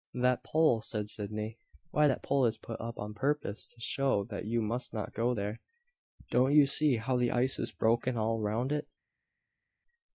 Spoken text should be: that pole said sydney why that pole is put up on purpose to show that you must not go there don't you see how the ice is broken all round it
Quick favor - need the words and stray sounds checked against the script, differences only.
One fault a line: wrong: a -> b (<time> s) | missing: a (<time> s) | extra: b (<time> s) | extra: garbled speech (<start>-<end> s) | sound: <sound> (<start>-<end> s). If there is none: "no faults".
no faults